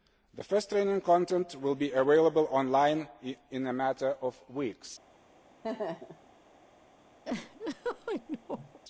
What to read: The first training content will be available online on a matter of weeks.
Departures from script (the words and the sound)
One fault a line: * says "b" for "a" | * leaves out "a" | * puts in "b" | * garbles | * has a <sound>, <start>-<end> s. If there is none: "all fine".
* says "in" for "on"
* has a laugh, 5.6-6.3 s
* has a laugh, 7.2-8.8 s